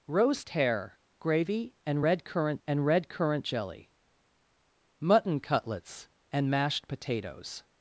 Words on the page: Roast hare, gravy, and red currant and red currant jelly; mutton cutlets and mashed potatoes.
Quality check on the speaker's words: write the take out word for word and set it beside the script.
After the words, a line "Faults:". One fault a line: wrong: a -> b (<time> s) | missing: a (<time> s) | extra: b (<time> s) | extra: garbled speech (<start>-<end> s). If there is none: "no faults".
Roast hare, gravy, and red currant and red currant jelly; mutton cutlets and mashed potatoes.
Faults:
no faults